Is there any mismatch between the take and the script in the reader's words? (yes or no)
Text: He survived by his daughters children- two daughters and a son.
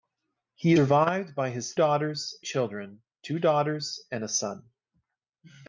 no